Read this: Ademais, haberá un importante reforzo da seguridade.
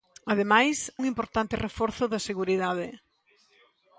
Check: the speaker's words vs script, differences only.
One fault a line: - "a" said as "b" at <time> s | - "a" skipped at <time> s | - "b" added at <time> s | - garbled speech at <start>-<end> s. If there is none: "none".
- "haberá" skipped at 0.9 s